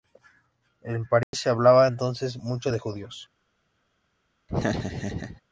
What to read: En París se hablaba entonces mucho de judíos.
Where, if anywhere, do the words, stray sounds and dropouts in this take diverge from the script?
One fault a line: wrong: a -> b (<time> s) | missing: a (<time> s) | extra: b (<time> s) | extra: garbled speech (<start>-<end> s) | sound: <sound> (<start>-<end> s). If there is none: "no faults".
sound: dropout (1.2-1.3 s)
sound: laugh (4.5-5.4 s)